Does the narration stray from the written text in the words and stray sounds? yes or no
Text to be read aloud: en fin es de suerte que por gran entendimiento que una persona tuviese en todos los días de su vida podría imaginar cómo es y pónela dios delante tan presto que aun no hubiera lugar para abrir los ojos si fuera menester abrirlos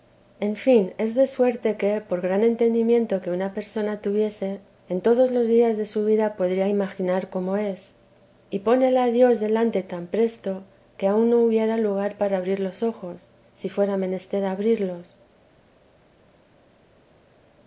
no